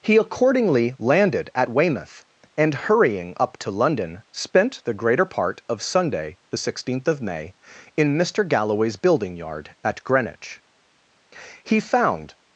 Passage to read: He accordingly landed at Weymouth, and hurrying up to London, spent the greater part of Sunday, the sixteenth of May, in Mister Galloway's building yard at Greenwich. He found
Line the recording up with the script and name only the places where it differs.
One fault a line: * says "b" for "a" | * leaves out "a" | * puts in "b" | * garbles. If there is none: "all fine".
all fine